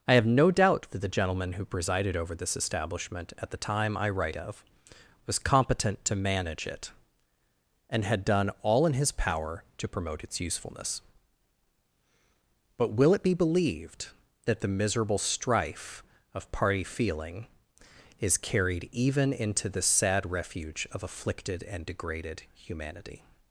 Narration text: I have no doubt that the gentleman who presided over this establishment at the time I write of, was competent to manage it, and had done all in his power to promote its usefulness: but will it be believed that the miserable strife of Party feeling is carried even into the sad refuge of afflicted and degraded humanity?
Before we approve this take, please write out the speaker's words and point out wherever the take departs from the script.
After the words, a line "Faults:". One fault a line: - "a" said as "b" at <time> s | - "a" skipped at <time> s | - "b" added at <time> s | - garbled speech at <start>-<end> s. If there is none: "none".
I have no doubt that the gentleman who presided over this establishment at the time I write of, was competent to manage it, and had done all in his power to promote its usefulness: but will it be believed that the miserable strife of Party feeling is carried even into the sad refuge of afflicted and degraded humanity?
Faults:
none